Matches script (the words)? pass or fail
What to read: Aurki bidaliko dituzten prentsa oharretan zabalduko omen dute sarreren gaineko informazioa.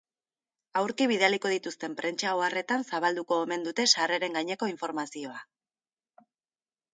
pass